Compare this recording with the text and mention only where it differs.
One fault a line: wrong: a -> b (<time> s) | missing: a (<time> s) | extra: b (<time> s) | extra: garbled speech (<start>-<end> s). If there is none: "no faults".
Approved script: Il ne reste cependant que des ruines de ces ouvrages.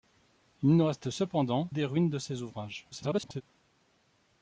missing: que (1.7 s)
extra: garbled speech (2.9-3.4 s)